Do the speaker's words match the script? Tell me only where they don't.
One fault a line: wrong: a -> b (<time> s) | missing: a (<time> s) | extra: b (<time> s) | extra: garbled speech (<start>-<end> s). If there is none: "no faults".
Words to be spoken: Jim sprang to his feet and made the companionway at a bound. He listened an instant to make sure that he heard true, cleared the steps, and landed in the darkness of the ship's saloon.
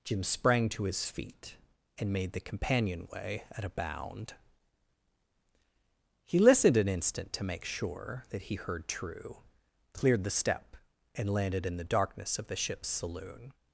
wrong: steps -> step (10.3 s)